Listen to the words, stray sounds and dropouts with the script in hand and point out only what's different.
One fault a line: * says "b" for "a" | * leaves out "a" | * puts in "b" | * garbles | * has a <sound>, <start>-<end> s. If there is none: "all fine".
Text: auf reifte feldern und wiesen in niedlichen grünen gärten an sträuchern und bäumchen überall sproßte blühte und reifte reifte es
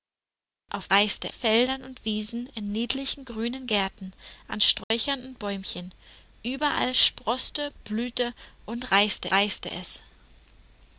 * has a dropout, 4.8-4.9 s